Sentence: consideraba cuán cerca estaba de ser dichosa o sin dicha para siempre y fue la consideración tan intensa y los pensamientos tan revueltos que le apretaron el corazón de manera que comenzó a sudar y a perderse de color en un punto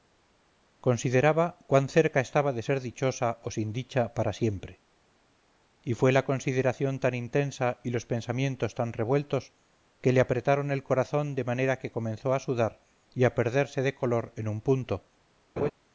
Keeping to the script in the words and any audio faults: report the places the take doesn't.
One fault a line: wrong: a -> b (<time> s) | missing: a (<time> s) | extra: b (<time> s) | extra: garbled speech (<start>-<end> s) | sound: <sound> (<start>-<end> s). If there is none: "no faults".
sound: laugh (15.6-15.7 s)